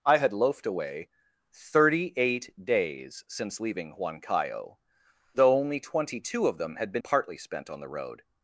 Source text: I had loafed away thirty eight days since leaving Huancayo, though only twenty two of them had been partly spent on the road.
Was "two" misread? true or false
false